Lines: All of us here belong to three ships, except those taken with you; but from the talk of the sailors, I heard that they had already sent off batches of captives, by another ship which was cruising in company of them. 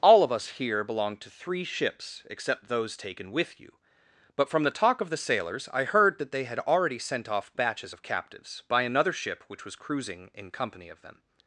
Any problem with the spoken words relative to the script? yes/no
no